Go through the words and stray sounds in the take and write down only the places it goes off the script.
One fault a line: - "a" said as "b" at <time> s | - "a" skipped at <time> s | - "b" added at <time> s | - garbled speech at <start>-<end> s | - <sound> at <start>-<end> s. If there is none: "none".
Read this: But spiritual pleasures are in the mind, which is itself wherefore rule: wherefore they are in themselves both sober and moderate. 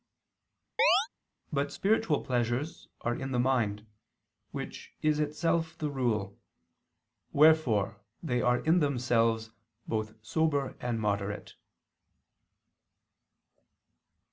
- chirp at 0.8-1.1 s
- "wherefore" said as "the" at 5.8 s